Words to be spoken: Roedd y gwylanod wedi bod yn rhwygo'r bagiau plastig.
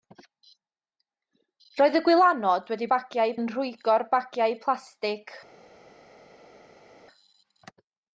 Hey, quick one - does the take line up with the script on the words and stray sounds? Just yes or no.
no